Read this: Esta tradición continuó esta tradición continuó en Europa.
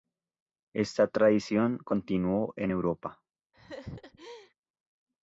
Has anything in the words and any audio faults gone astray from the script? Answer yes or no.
yes